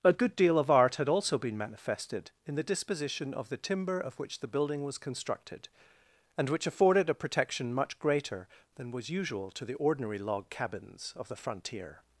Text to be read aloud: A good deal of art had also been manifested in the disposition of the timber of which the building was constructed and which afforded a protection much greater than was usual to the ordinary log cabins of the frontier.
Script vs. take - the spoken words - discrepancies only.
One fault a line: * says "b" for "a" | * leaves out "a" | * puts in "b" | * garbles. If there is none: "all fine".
all fine